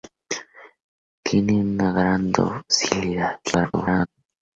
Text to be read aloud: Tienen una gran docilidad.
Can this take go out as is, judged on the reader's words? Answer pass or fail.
fail